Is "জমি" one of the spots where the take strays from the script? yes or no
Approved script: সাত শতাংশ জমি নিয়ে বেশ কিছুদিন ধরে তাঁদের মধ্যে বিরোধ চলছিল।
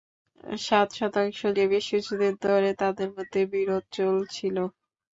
yes